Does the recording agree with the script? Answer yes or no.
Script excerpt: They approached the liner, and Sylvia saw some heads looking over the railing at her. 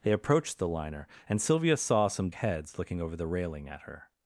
yes